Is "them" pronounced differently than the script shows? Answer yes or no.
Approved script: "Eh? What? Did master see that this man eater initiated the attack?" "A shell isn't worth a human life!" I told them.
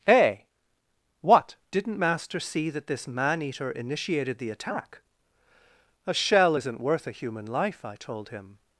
yes